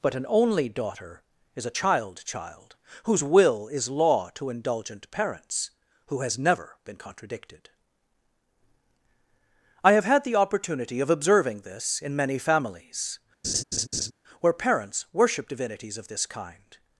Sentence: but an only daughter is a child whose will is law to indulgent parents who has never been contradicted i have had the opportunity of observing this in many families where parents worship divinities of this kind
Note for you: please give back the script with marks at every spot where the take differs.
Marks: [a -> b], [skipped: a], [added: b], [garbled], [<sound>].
but an only daughter is a child [added: child] whose will is law to indulgent parents who has never been contradicted i have had the opportunity of observing this in many families [laugh] where parents worship divinities of this kind